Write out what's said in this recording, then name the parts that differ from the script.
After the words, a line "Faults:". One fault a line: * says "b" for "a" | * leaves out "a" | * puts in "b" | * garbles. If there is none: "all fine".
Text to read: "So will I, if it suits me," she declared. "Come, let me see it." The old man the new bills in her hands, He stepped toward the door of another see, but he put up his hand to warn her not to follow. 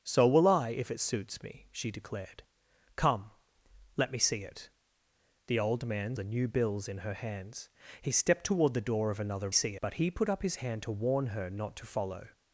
"So will I, if it suits me," she declared. "Come, let me see it." The old man the new bills in her hands, He stepped toward the door of another see, but he put up his hand to warn her not to follow.
Faults:
all fine